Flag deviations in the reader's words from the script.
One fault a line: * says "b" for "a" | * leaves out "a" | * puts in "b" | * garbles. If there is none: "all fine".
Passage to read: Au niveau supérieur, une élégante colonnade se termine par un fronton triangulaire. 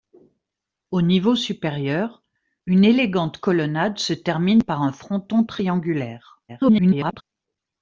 * garbles